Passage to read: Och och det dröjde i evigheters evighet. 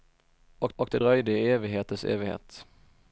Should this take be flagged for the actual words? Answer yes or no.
no